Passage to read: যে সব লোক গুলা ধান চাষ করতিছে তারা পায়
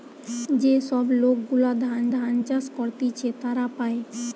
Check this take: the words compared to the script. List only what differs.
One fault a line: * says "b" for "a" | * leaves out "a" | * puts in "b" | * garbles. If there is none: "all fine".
* puts in "ধান"